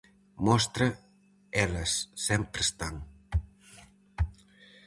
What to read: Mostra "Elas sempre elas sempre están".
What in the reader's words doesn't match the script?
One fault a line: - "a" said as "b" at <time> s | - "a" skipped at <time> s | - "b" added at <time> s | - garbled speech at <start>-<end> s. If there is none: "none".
- "elas sempre" skipped at 2.6 s